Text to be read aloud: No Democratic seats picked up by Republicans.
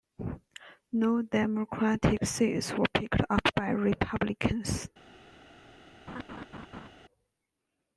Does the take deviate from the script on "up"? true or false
false